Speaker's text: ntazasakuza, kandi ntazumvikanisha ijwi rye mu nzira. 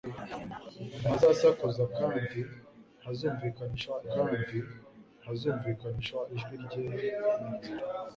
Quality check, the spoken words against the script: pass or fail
fail